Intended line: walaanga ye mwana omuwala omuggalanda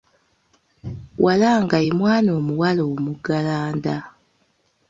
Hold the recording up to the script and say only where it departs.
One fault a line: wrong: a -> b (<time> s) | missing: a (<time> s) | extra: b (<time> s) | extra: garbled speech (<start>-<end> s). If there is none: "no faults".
no faults